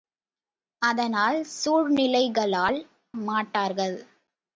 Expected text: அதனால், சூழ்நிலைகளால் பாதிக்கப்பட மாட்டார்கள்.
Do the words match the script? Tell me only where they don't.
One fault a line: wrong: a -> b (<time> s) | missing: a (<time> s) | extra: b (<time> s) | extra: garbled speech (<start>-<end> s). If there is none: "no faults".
missing: பாதிக்கப்பட (2.8 s)